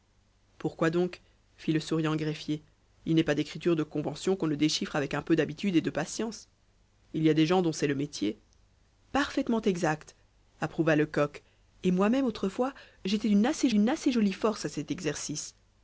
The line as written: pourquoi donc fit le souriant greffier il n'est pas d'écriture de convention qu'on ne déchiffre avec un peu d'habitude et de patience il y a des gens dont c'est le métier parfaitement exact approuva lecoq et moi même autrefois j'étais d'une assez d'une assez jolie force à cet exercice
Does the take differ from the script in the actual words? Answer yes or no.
no